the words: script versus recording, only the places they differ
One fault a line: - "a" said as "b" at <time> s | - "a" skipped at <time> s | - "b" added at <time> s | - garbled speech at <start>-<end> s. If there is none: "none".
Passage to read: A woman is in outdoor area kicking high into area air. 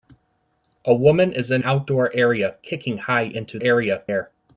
none